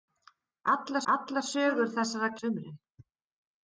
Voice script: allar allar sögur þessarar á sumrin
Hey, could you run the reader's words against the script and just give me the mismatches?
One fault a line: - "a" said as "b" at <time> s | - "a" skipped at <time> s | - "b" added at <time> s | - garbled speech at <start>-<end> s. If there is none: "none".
none